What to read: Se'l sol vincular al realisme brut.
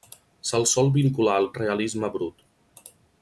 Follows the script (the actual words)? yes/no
yes